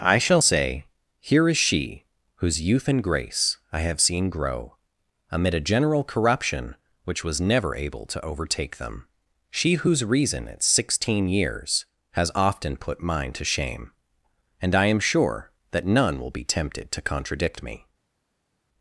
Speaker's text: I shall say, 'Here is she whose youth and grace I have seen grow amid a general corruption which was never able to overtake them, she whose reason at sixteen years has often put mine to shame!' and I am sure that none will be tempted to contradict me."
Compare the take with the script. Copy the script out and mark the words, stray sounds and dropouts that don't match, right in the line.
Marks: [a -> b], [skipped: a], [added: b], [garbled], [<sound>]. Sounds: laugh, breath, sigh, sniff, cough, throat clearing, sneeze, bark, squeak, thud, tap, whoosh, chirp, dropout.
I shall say, 'Here is she whose youth and grace I have seen grow amid a general corruption which was never able to overtake them, she whose reason at sixteen years has often put mine to shame!' and I am sure that none will be tempted to contradict me."